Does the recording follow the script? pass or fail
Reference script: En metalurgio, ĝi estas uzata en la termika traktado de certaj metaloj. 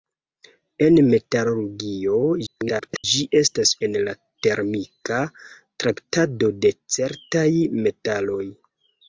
fail